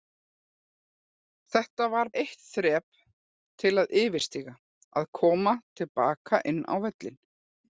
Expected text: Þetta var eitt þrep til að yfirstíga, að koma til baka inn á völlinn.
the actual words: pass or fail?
pass